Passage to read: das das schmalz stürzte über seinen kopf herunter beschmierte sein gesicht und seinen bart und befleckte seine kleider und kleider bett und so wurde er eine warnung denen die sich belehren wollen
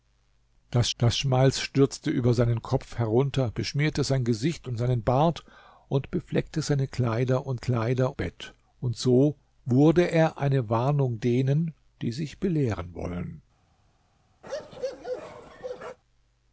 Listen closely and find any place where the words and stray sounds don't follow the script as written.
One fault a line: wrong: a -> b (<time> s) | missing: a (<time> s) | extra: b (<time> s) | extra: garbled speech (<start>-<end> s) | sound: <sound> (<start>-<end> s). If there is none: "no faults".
sound: bark (14.4-16.0 s)